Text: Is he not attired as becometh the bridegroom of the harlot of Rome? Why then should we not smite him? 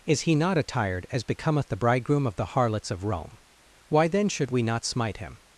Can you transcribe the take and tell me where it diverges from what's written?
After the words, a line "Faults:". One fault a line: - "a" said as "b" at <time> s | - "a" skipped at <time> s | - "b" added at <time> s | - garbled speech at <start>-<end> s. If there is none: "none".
Is he not attired as becometh the bridegroom of the harlots of Rome? Why then should we not smite him?
Faults:
- "harlot" said as "harlots" at 2.5 s